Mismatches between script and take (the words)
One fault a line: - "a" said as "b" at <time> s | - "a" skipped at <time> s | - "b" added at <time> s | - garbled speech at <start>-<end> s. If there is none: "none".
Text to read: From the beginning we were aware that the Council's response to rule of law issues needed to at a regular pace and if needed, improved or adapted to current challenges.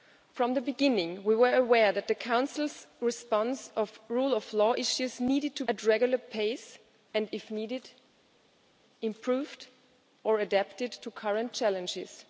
none